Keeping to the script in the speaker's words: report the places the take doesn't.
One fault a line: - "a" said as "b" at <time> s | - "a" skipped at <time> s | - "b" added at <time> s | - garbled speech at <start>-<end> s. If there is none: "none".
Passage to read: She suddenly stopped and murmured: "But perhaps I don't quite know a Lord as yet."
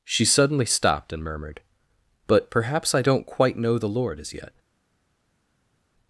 - "a" said as "the" at 3.8 s